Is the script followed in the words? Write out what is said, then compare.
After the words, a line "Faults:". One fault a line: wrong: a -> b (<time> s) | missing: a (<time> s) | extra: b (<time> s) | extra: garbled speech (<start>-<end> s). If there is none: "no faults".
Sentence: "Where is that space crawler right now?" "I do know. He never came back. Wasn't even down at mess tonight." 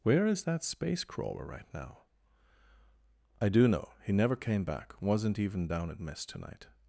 "Where is that space crawler right now?" "I do know. He never came back. Wasn't even down at mess tonight."
Faults:
no faults